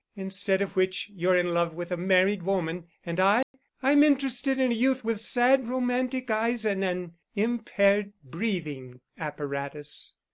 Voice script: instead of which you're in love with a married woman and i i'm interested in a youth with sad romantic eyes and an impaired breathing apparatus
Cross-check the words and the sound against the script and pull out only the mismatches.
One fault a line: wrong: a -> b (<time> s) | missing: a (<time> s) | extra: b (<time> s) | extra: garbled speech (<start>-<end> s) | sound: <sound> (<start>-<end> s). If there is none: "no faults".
sound: dropout (3.4-3.5 s)